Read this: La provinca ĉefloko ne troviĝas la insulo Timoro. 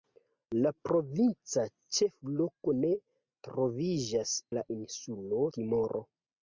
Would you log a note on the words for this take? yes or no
no